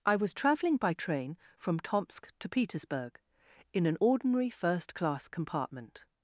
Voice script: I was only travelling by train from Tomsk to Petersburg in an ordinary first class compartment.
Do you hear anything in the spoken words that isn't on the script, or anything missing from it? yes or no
yes